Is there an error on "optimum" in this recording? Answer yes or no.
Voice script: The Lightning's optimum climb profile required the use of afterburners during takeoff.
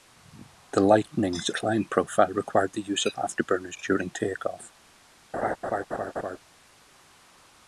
yes